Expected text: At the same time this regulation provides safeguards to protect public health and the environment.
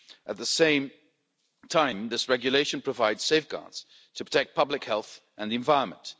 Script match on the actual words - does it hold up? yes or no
yes